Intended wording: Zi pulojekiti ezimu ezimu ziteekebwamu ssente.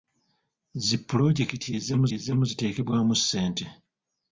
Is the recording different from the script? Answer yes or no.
no